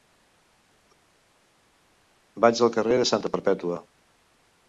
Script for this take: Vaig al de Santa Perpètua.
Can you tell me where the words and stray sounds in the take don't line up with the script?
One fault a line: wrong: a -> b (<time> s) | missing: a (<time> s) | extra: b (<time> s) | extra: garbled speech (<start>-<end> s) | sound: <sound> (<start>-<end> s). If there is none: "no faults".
extra: carrer (2.8 s)